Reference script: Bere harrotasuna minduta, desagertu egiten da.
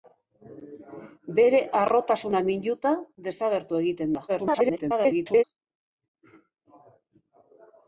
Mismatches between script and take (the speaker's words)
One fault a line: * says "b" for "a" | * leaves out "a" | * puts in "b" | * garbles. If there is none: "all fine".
* garbles